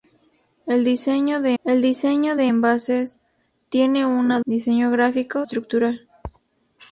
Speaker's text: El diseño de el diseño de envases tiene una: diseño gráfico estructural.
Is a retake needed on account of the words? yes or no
no